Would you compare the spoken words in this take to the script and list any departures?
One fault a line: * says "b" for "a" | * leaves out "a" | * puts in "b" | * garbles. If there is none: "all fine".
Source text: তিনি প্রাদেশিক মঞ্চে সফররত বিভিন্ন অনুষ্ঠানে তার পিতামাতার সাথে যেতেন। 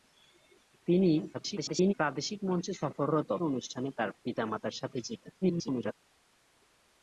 * garbles
* leaves out "বিভিন্ন"
* garbles